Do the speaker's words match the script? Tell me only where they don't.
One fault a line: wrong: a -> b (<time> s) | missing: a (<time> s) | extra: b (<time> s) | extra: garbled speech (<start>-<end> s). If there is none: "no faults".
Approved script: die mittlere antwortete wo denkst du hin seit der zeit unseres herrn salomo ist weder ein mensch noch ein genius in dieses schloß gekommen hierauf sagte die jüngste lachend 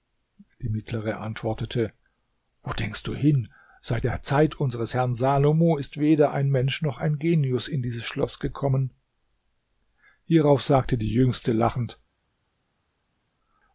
no faults